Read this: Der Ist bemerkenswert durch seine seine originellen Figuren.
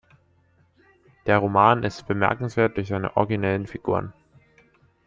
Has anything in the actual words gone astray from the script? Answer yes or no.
yes